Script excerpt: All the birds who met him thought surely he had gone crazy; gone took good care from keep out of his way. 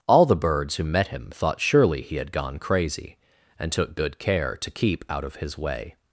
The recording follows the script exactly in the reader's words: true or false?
false